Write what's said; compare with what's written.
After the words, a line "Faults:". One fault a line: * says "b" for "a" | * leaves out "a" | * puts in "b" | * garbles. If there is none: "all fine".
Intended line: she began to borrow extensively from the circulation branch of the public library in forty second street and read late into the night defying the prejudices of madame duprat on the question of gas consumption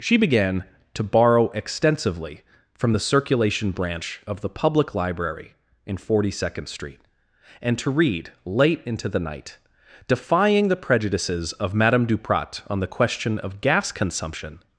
she began to borrow extensively from the circulation branch of the public library in forty second street and to read late into the night defying the prejudices of madame duprat on the question of gas consumption
Faults:
* puts in "to"